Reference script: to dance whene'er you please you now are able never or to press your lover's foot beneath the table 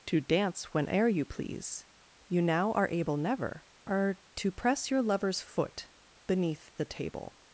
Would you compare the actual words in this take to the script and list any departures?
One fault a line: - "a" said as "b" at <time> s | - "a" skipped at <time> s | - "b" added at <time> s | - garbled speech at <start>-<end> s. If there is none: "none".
none